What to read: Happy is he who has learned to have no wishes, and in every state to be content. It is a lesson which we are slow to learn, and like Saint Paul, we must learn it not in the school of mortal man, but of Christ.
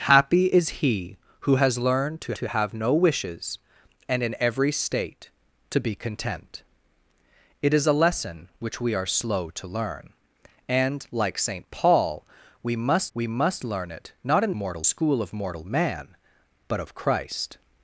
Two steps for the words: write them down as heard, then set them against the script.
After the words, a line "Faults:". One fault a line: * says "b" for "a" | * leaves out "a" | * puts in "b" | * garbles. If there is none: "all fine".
Happy is he who has learned to to have no wishes, and in every state to be content. It is a lesson which we are slow to learn, and like Saint Paul, we must we must learn it not in mortal school of mortal man, but of Christ.
Faults:
* puts in "to"
* puts in "we must"
* says "mortal" for "the"